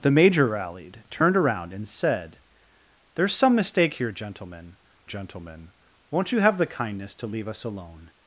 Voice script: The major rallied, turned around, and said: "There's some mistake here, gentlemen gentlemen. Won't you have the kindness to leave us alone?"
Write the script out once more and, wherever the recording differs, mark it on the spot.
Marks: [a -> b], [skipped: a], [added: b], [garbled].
The major rallied, turned around, and said: "There's some mistake here, gentlemen gentlemen. Won't you have the kindness to leave us alone?"